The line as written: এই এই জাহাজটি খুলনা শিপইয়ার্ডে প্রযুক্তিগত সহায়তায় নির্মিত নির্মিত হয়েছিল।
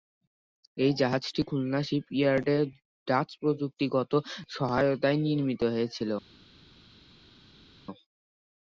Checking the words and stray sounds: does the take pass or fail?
fail